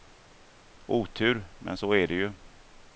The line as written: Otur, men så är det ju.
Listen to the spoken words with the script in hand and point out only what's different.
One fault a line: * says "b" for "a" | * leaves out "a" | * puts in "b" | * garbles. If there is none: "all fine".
all fine